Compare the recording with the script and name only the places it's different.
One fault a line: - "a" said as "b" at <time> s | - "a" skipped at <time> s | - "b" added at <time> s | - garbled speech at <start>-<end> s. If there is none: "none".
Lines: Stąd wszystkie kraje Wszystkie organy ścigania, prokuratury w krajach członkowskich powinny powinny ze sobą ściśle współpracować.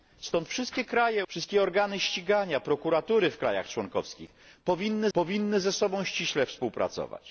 none